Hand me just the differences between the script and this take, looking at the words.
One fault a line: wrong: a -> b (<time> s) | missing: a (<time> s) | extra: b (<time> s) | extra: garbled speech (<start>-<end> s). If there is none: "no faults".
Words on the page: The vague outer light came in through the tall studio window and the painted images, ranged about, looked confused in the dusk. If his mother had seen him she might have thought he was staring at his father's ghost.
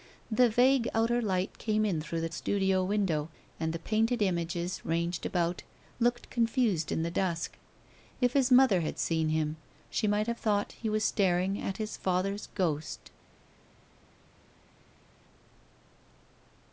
missing: tall (2.3 s)